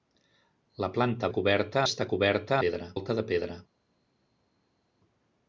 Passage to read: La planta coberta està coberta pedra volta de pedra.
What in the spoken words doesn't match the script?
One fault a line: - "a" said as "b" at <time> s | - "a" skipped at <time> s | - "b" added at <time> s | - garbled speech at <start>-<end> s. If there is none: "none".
none